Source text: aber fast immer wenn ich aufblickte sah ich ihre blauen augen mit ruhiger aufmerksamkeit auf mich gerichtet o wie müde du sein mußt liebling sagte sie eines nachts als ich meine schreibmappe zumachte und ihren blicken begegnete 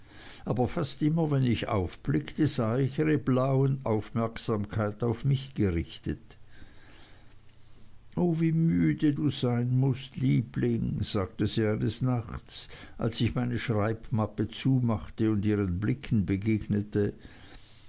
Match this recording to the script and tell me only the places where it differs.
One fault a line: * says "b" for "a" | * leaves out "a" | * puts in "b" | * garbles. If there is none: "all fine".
* leaves out "augen mit ruhiger"